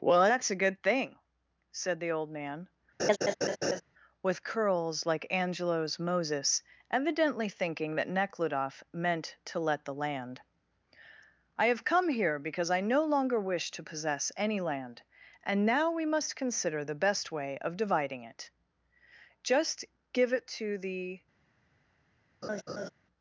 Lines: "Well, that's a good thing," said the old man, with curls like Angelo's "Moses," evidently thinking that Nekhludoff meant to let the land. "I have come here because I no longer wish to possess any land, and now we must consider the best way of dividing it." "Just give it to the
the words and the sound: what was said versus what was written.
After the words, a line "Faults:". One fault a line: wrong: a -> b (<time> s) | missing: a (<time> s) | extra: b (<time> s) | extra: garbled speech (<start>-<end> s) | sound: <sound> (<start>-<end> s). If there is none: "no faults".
"Well, that's a good thing," said the old man, with curls like Angelo's "Moses," evidently thinking that Nekhludoff meant to let the land. "I have come here because I no longer wish to possess any land, and now we must consider the best way of dividing it." "Just give it to the
Faults:
sound: laugh (3.0-3.8 s)
sound: laugh (22.4-22.9 s)